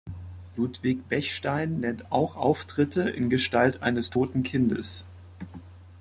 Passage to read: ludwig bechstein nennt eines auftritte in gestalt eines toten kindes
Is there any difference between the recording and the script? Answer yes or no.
yes